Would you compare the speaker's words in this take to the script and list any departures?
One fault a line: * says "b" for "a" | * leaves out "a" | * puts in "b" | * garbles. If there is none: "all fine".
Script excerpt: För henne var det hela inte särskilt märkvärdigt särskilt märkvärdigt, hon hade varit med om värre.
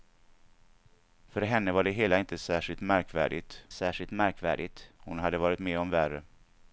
all fine